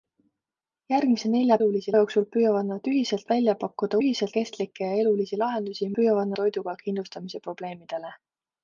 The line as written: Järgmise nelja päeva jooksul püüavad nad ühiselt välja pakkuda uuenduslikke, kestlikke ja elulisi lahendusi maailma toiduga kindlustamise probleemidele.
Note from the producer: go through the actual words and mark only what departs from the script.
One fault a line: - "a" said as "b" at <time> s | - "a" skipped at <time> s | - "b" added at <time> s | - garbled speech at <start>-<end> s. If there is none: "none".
- "päeva" said as "elulisi" at 1.6 s
- "uuenduslikke" said as "ühiselt" at 4.0 s
- "maailma" said as "püüavad" at 6.0 s